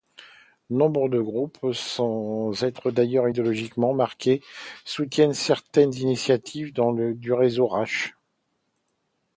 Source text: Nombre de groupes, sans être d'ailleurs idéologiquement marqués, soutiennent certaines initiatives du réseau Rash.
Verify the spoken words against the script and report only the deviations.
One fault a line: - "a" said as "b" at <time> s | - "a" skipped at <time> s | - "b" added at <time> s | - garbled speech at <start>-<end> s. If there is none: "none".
none